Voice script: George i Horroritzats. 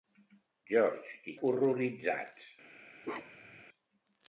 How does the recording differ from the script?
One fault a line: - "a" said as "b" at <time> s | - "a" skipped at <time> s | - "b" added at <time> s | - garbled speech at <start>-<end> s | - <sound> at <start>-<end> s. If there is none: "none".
- bark at 3.0-3.6 s